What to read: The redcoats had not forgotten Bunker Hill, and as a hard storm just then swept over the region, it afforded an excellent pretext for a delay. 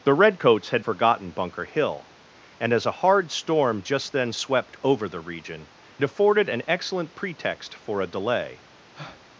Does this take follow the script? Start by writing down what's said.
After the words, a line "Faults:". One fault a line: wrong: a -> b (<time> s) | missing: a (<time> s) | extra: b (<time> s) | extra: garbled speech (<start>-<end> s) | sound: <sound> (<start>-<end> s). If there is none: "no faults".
The redcoats had forgotten Bunker Hill, and as a hard storm just then swept over the region, afforded an excellent pretext for a delay.
Faults:
missing: not (0.8 s)
missing: it (5.7 s)
sound: breath (8.9-9.2 s)